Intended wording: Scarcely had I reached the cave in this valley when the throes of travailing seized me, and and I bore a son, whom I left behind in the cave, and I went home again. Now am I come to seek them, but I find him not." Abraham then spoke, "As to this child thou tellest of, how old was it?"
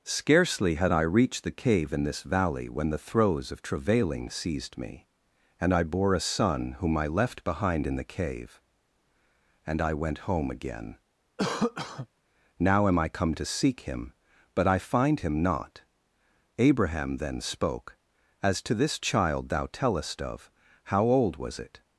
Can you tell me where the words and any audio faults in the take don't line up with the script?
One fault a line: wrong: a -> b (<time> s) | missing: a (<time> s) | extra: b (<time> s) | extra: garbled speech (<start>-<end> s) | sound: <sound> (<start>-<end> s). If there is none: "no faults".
missing: and (5.7 s)
sound: cough (11.4-12.1 s)
wrong: them -> him (13.8 s)